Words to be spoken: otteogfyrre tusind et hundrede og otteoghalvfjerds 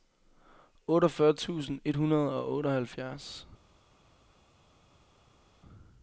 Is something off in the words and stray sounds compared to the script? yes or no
no